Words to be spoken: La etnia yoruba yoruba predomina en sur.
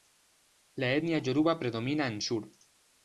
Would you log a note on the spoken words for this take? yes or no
yes